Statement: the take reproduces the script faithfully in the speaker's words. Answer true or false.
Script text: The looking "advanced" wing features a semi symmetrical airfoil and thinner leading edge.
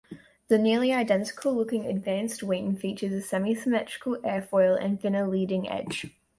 false